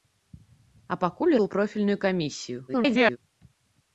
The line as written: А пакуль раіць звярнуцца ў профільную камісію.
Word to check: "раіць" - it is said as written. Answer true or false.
false